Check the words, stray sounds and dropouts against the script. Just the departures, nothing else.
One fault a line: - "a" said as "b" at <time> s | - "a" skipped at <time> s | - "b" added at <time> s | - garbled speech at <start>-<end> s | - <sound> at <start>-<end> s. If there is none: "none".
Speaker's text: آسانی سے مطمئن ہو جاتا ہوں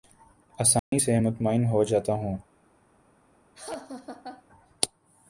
- dropout at 0.8-0.9 s
- laugh at 3.5-4.4 s